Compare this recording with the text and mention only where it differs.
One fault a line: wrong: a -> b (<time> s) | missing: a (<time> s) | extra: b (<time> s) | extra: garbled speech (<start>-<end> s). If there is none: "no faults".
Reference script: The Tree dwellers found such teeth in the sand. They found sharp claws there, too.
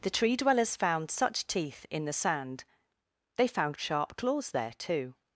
no faults